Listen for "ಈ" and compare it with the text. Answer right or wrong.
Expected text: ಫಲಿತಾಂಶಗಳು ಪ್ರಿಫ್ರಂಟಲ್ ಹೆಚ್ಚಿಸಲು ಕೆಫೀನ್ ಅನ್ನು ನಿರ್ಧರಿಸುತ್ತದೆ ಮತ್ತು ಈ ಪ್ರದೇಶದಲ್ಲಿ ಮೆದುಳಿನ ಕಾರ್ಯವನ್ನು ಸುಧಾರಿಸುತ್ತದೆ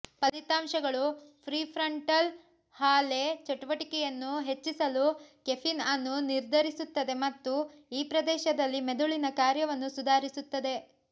right